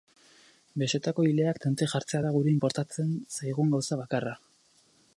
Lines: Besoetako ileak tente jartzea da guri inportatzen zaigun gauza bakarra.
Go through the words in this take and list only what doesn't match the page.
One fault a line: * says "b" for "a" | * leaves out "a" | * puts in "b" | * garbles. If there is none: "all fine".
all fine